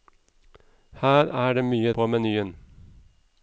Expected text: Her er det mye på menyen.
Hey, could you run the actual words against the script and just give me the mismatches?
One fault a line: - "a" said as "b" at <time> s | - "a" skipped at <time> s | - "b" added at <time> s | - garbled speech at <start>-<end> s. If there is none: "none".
none